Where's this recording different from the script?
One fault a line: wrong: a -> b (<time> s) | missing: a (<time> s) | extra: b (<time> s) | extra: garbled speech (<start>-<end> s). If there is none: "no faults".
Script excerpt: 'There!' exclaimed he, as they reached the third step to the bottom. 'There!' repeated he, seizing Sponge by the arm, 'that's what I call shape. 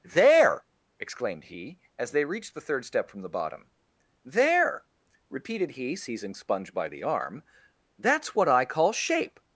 wrong: to -> from (3.1 s)